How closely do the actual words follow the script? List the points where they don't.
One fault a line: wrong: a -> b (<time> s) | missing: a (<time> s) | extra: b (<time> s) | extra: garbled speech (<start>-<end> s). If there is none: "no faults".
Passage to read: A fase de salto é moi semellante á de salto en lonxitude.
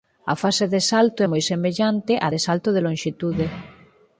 wrong: en -> de (2.7 s)